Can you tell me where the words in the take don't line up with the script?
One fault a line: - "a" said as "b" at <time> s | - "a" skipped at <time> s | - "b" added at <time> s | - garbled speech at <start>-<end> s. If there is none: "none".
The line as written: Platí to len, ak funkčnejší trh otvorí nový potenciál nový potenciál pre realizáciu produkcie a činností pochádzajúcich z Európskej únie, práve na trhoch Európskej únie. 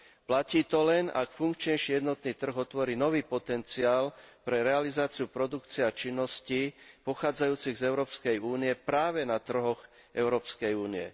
- "jednotný" added at 2.0 s
- "nový potenciál" skipped at 4.1 s